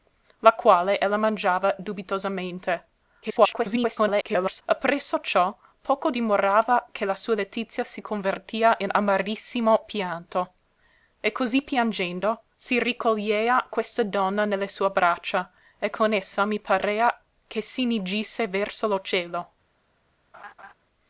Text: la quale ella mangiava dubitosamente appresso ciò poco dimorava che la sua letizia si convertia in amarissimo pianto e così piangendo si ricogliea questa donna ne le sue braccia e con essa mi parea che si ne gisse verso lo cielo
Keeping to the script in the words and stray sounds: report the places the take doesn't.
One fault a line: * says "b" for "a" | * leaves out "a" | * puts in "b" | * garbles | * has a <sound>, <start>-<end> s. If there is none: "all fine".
* garbles
* has a laugh, 20.3-20.7 s